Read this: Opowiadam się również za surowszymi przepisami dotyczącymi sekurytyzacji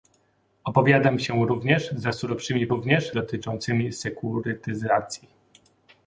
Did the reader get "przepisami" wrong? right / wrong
wrong